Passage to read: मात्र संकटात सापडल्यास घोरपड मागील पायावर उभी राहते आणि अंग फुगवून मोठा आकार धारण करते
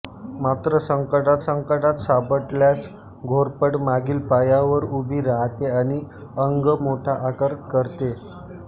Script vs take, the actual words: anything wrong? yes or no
yes